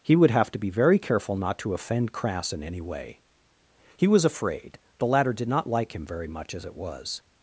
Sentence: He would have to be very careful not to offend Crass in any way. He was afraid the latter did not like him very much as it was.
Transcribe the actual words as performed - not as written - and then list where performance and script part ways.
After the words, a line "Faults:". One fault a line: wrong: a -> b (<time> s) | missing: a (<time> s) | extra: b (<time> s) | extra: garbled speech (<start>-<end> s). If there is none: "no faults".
He would have to be very careful not to offend Crass in any way. He was afraid the latter did not like him very much as it was.
Faults:
no faults